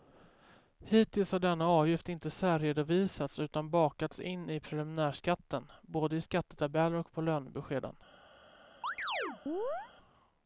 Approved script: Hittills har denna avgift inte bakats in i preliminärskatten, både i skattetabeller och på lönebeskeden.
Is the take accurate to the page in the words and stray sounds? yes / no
no